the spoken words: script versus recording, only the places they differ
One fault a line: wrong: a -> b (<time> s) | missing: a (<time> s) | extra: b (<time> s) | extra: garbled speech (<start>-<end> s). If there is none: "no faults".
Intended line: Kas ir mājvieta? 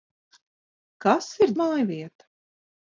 no faults